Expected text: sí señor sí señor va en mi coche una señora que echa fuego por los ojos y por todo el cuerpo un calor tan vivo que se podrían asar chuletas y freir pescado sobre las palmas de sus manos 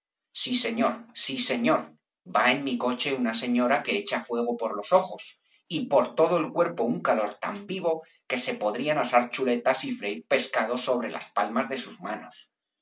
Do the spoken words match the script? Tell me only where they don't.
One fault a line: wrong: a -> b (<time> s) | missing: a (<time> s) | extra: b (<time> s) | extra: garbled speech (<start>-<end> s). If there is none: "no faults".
no faults